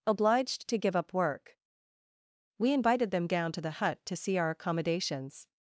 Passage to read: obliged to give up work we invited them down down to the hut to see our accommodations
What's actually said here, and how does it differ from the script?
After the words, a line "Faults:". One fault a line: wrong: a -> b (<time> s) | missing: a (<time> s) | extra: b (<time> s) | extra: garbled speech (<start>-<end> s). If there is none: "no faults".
obliged to give up work we invited them down to the hut to see our accommodations
Faults:
missing: down (3.5 s)